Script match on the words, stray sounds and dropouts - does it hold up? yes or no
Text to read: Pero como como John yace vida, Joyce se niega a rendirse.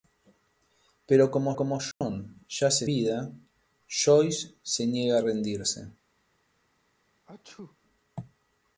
no